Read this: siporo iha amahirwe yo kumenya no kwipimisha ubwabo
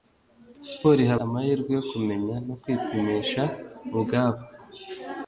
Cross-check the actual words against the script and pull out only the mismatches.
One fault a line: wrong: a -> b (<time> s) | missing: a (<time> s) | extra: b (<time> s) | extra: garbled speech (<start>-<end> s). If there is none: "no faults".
no faults